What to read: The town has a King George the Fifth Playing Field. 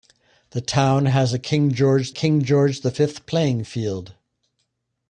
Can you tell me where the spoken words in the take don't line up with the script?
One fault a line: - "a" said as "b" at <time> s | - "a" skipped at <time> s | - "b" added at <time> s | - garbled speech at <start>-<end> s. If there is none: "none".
- "King George" added at 2.1 s